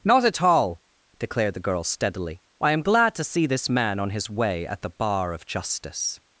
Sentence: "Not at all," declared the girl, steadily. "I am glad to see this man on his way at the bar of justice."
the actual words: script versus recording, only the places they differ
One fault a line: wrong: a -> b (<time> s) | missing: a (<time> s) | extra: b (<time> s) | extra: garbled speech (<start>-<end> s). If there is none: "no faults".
no faults